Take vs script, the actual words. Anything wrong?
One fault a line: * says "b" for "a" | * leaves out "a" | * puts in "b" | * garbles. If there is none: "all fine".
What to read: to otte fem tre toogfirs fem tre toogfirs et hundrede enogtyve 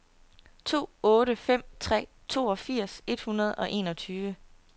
* leaves out "fem tre toogfirs"
* puts in "og"